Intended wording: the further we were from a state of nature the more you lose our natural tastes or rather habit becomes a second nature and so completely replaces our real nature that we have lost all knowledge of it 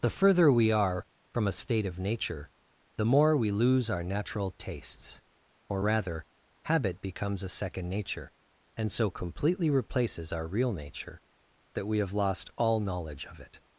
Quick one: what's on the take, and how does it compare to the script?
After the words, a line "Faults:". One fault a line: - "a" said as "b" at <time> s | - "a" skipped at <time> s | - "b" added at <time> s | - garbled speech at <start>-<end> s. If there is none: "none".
the further we are from a state of nature the more we lose our natural tastes or rather habit becomes a second nature and so completely replaces our real nature that we have lost all knowledge of it
Faults:
- "were" said as "are" at 0.7 s
- "you" said as "we" at 3.4 s